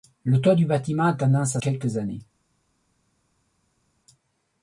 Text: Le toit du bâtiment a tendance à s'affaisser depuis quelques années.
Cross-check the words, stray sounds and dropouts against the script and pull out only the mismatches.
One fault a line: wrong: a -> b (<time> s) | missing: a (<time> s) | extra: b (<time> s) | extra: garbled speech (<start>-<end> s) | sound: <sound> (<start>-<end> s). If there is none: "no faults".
missing: s'affaisser depuis (1.6 s)